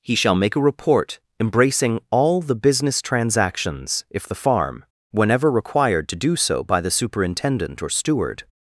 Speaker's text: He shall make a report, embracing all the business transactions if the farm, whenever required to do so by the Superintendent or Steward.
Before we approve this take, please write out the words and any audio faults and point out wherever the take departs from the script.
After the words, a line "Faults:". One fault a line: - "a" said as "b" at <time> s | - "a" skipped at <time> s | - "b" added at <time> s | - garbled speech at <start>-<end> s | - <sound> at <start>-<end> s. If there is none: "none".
He shall make a report, embracing all the business transactions if the farm, whenever required to do so by the Superintendent or Steward.
Faults:
none